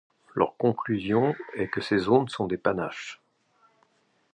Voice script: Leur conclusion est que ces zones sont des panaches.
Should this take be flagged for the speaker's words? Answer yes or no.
no